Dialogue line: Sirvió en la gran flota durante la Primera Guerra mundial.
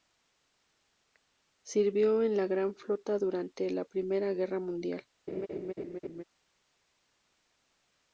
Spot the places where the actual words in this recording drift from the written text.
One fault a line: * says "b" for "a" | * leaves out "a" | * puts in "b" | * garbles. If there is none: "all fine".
all fine